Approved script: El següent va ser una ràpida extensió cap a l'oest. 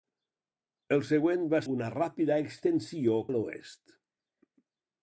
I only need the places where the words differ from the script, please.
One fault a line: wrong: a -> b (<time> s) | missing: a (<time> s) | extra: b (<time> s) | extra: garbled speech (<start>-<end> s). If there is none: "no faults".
missing: ser (1.6 s)
missing: cap (3.2 s)